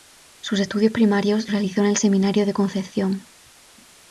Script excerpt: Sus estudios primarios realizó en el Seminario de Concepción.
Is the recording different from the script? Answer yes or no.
no